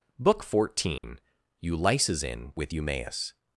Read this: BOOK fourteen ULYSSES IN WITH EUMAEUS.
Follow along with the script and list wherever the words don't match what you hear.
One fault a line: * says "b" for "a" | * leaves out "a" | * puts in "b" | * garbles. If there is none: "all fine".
all fine